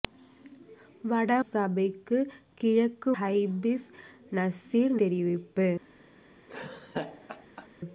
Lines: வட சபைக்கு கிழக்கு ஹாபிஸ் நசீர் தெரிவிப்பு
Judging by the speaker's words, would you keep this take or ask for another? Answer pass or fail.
pass